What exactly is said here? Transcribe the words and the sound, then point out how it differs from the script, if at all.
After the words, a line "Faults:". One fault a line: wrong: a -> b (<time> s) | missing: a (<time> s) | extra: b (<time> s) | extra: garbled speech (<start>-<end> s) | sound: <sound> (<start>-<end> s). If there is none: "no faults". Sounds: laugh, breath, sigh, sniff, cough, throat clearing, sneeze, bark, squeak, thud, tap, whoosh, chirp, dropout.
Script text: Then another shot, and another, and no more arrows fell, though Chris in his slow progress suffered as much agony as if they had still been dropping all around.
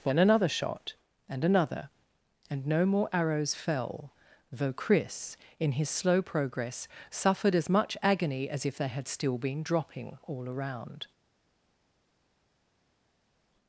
Then another shot, and another, and no more arrows fell, though Chris in his slow progress suffered as much agony as if they had still been dropping all around.
Faults:
no faults